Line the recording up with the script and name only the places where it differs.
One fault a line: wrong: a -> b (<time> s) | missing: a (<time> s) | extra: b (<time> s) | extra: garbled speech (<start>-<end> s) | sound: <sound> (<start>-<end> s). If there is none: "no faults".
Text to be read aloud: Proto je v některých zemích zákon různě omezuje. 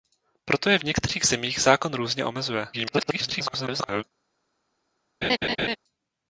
extra: garbled speech (2.7-4.0 s)
sound: laugh (5.2-5.8 s)